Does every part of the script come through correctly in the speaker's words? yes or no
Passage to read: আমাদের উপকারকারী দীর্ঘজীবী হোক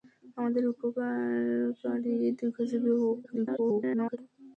no